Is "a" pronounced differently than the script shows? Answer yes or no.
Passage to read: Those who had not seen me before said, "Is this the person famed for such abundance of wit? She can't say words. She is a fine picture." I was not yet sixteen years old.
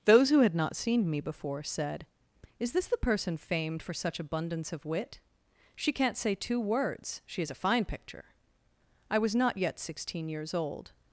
no